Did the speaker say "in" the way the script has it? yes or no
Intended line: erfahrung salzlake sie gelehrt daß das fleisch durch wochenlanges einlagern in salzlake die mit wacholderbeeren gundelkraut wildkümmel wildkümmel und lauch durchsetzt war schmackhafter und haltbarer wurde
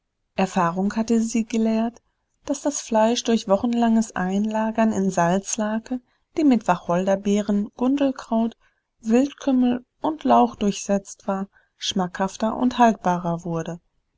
yes